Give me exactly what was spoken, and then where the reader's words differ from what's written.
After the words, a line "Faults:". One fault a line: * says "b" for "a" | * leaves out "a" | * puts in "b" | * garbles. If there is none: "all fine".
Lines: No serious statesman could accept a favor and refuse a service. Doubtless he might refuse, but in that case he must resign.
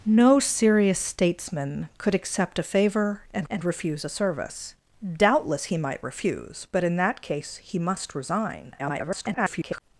No serious statesman could accept a favor and and refuse a service. Doubtless he might refuse, but in that case he must resign. [garbled]
Faults:
* puts in "and"
* garbles